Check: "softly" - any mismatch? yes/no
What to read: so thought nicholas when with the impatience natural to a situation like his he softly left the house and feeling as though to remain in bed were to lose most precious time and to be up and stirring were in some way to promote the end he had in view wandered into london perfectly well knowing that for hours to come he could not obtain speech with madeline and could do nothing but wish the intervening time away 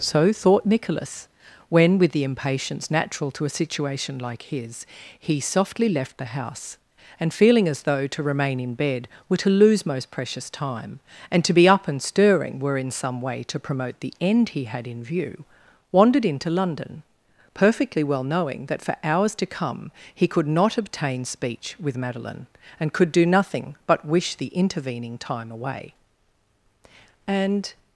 no